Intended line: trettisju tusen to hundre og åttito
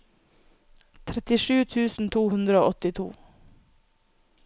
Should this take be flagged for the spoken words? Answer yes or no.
no